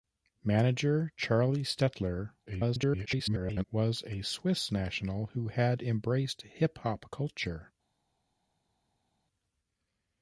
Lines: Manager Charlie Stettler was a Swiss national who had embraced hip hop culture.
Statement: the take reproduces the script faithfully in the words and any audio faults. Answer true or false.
false